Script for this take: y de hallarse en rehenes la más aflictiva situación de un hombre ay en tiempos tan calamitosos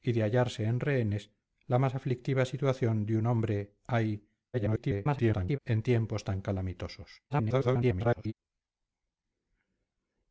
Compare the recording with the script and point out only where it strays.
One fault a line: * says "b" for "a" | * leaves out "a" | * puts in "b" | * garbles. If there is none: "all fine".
* garbles
* garbles